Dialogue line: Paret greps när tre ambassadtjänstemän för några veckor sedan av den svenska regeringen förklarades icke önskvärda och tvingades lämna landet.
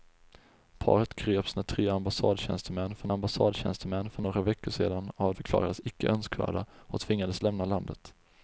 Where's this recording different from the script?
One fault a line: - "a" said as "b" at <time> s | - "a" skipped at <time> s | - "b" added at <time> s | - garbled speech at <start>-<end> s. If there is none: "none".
- "ambassadtjänstemän för" added at 3.1 s
- "den svenska regeringen" skipped at 5.3 s